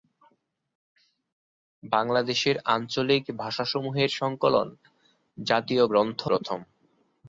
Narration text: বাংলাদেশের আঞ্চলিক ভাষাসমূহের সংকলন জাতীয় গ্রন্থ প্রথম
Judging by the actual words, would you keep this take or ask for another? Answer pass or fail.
pass